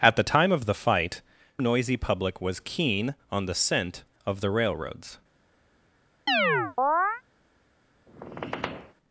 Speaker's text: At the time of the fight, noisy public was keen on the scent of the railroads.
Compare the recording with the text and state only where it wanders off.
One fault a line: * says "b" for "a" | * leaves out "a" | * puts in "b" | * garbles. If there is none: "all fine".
all fine